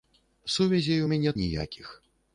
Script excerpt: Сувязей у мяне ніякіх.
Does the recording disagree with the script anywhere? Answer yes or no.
no